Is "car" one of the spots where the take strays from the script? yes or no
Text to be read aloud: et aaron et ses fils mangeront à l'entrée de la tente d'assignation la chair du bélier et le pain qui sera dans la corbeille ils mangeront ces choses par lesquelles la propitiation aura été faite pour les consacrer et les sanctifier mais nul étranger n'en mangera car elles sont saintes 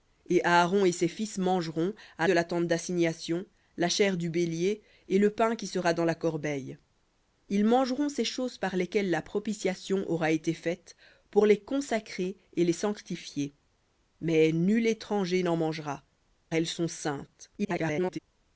yes